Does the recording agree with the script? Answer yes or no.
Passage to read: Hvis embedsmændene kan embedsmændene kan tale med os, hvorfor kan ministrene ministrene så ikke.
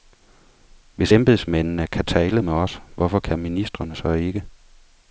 no